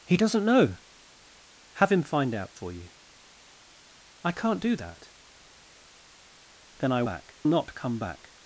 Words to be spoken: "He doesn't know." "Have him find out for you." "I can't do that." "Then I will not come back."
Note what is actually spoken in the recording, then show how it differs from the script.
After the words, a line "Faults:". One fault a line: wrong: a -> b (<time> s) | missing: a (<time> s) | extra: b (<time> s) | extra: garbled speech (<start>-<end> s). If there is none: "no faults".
"He doesn't know." "Have him find out for you." "I can't do that." "Then I back not come back."
Faults:
wrong: will -> back (7.0 s)